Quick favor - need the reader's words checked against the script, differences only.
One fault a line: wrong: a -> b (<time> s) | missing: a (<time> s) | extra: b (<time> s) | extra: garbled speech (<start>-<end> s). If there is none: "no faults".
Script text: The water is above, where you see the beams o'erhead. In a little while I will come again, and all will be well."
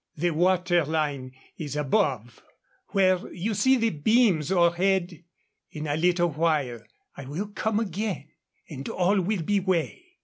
extra: line (0.8 s)